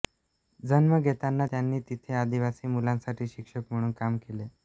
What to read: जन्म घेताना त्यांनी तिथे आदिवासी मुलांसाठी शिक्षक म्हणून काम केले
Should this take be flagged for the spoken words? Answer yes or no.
no